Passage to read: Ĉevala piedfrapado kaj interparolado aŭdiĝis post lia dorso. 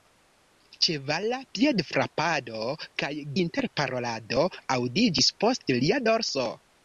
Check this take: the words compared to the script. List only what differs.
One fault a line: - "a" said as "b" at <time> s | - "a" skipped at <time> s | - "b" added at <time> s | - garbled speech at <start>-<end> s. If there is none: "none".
none